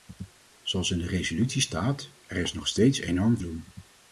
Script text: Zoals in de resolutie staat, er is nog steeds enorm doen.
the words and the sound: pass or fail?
pass